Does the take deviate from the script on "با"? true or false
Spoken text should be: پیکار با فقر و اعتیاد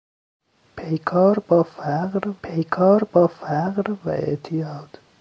false